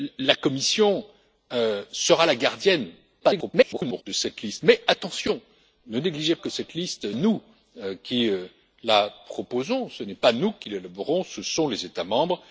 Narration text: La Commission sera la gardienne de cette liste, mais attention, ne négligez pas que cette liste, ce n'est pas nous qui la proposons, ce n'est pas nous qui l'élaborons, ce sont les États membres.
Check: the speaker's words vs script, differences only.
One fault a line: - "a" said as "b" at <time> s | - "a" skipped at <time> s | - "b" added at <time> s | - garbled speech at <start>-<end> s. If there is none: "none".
- garbled speech at 3.2-4.0 s
- "pas" skipped at 6.4 s
- "ce n'est pas" skipped at 7.1 s